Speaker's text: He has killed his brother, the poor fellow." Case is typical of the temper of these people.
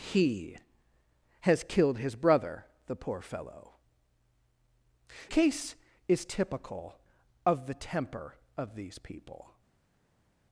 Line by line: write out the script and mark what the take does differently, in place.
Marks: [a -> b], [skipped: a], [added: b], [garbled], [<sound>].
He has killed his brother, the poor fellow." Case is typical of the temper of these people.